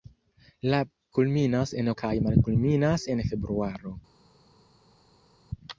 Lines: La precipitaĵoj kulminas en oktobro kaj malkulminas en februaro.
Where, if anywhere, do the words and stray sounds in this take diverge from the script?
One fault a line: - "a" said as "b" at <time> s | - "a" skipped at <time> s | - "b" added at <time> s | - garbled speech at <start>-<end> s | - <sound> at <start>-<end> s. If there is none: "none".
- "precipitaĵoj" skipped at 0.8 s
- "oktobro" skipped at 1.9 s